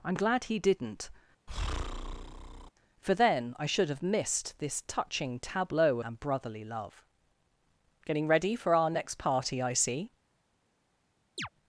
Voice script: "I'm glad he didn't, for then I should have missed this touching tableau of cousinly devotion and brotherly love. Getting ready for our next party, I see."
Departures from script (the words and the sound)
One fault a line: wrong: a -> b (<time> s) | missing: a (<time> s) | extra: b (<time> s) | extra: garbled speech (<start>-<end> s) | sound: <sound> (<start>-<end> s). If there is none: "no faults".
sound: breath (1.5-2.7 s)
missing: of cousinly devotion (6.0 s)
sound: chirp (11.4-11.5 s)